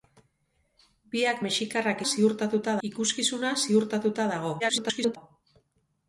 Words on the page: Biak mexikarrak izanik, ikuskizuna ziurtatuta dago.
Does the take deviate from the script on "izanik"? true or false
true